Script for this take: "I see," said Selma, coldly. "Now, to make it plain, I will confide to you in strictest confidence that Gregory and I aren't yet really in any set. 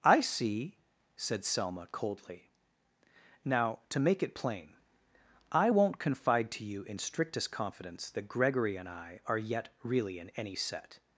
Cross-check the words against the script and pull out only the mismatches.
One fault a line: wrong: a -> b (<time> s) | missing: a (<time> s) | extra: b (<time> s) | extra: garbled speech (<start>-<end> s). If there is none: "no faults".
wrong: will -> won't (5.7 s)
wrong: aren't -> are (9.3 s)